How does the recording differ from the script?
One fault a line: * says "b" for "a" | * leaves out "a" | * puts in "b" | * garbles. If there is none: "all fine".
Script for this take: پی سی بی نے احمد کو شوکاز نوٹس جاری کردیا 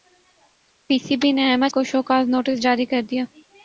all fine